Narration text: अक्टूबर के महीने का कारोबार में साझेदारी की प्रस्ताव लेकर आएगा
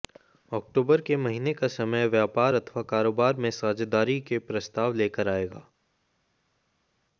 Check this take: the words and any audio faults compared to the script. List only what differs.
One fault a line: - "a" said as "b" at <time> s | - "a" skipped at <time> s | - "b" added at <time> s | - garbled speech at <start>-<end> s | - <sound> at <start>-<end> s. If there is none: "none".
- "समय व्यापार अथवा" added at 1.7 s
- "की" said as "के" at 4.2 s